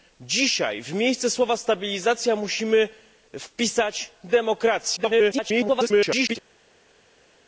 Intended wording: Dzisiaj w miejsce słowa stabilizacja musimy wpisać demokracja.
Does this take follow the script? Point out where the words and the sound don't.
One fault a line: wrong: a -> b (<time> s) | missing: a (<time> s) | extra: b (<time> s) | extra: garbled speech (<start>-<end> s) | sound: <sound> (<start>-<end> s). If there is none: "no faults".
extra: garbled speech (5.0-6.4 s)